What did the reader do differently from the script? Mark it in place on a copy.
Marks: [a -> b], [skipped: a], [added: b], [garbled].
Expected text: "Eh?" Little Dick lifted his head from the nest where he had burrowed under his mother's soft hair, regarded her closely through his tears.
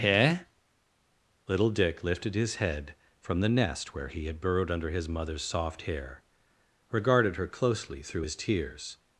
"Eh?" Little Dick lifted his head from the nest where he had burrowed under his mother's soft hair, regarded her closely through his tears.